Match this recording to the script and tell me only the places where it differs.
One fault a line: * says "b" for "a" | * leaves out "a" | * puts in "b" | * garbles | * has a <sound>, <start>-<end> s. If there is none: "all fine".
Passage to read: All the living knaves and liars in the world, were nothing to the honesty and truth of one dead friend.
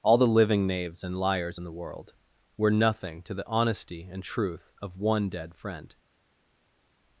all fine